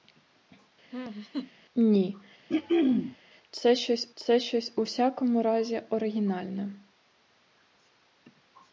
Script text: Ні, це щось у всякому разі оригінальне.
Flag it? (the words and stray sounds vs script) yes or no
yes